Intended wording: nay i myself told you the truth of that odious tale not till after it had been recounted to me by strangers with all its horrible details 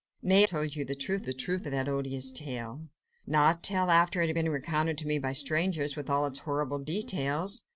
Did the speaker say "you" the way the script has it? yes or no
no